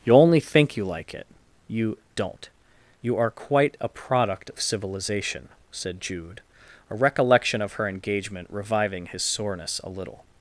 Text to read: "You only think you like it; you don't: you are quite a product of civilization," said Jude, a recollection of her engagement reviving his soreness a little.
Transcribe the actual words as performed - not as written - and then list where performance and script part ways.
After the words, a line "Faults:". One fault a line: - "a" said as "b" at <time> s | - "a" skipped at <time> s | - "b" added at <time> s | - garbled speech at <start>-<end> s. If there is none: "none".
"You only think you like it; you don't: you are quite a product of civilization," said Jude, a recollection of her engagement reviving his soreness a little.
Faults:
none